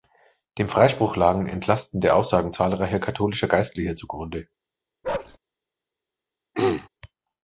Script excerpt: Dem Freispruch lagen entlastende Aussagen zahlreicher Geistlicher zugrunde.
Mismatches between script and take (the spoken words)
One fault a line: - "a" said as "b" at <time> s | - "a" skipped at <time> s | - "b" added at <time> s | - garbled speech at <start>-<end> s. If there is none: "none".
- "katholischer" added at 3.0 s